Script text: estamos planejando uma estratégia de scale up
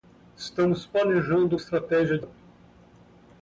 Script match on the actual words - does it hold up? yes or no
no